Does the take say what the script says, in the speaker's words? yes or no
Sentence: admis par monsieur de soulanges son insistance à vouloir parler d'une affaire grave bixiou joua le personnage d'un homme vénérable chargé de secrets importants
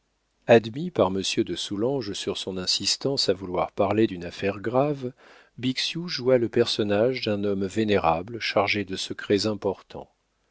no